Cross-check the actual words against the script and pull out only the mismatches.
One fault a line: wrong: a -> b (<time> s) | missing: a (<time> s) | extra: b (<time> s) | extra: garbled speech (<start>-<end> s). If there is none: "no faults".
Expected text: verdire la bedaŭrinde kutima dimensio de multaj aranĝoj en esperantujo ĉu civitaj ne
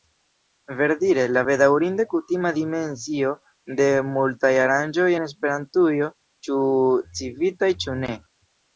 extra: ĉu (7.8 s)